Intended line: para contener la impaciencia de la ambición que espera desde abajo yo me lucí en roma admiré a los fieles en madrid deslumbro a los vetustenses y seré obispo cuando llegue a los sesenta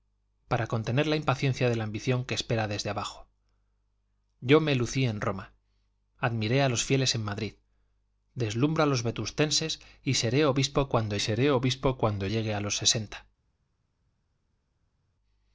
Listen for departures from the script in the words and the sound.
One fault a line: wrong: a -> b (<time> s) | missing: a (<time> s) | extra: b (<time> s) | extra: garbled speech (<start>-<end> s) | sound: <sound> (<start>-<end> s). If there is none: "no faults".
extra: seré obispo cuando (11.2 s)